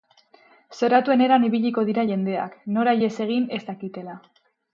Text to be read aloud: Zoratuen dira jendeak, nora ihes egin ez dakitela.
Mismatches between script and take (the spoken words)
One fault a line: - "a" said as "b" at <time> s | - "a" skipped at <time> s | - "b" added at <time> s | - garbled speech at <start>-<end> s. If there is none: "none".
- "eran ibiliko" added at 1.2 s